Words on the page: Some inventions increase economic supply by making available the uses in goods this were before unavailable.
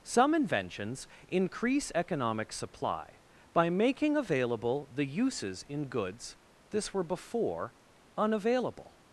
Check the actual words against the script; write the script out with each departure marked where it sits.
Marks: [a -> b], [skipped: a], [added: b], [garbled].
Some inventions increase economic supply by making available the uses in goods this were before unavailable.